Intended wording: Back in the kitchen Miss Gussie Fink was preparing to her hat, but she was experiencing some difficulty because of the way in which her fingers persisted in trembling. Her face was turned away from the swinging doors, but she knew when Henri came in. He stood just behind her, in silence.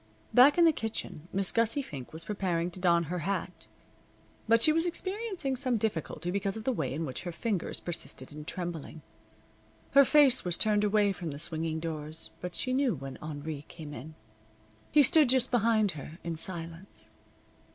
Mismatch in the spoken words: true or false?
true